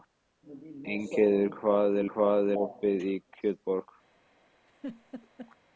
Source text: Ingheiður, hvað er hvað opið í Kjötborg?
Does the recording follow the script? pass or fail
pass